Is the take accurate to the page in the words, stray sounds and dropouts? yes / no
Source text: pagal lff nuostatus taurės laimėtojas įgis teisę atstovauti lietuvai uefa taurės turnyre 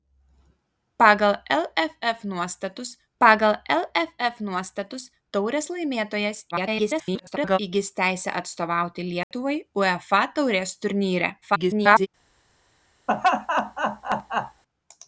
no